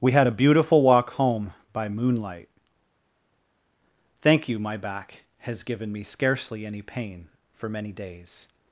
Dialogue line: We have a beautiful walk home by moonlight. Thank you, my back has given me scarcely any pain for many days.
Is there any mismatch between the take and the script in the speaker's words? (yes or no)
yes